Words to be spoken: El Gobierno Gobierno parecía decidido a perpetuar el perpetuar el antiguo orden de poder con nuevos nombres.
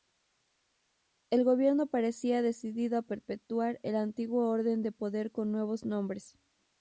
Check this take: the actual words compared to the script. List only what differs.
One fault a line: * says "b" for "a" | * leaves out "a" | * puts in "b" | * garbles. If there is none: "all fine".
* leaves out "Gobierno"
* leaves out "perpetuar el"